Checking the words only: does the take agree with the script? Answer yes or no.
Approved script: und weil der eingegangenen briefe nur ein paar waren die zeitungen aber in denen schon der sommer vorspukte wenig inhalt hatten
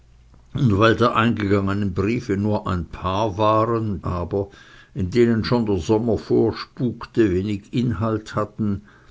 no